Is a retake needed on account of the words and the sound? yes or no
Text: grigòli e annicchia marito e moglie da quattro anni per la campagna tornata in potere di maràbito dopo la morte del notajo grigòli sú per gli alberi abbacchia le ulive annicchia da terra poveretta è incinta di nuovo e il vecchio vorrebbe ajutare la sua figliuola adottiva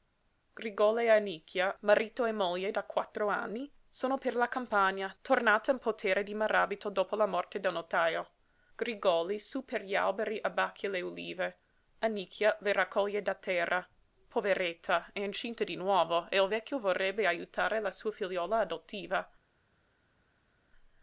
yes